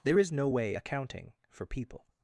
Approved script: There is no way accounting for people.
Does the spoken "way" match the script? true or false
true